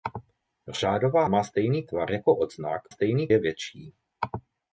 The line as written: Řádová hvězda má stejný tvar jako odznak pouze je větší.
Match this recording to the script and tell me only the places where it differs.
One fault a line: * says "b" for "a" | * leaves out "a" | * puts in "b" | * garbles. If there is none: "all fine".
* leaves out "hvězda"
* says "stejný" for "pouze"